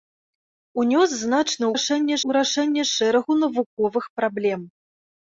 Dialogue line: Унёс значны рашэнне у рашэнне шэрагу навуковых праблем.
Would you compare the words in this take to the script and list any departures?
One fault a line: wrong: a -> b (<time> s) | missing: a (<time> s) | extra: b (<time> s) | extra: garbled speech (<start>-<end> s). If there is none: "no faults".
no faults